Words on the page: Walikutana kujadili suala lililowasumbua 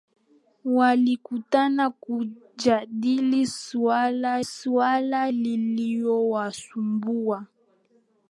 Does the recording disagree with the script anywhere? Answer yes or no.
yes